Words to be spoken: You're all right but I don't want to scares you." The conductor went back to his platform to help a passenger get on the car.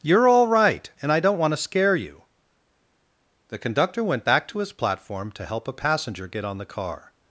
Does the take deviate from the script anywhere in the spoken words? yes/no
yes